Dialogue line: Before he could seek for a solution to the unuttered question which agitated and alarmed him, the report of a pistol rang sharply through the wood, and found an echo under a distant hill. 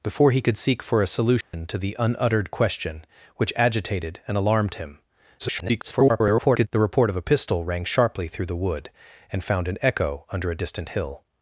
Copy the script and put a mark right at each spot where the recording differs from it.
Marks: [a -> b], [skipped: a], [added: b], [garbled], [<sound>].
Before he could seek for a solution [dropout] to the unuttered question which agitated and alarmed him, [garbled] the report of a pistol rang sharply through the wood, and found an echo under a distant hill.